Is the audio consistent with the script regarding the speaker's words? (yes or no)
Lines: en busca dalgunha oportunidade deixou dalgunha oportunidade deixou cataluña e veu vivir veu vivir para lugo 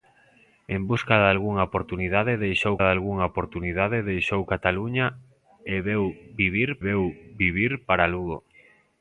yes